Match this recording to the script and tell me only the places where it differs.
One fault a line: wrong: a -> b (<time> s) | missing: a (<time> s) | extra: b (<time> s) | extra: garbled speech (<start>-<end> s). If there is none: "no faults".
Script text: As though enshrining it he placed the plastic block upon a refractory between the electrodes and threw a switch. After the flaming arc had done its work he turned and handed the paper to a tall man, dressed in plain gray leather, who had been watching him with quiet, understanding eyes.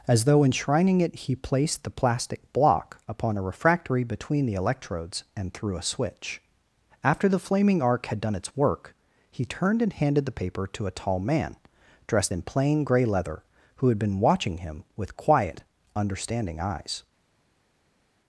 no faults